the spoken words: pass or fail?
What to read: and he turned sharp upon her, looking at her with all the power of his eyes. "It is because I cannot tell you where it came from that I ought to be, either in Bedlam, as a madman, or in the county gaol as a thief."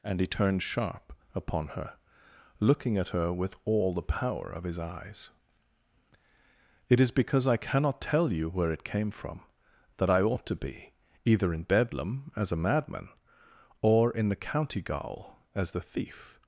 fail